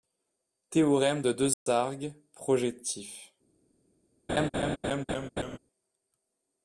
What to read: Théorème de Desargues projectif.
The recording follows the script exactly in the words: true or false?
true